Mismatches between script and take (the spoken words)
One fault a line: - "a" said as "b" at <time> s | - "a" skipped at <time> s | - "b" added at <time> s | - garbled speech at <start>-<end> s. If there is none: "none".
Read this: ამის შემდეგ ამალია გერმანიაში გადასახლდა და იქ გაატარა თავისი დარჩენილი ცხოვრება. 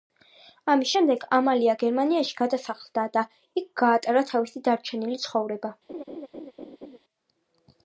none